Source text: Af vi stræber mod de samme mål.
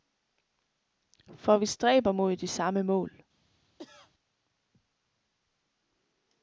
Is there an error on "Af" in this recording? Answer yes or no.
yes